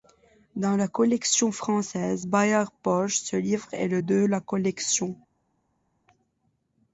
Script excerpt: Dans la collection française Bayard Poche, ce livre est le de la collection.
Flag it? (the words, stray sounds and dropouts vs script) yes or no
no